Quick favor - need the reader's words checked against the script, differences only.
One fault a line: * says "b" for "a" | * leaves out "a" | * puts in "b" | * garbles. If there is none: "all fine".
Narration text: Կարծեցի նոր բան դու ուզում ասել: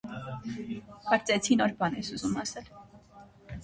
* says "ես" for "դու"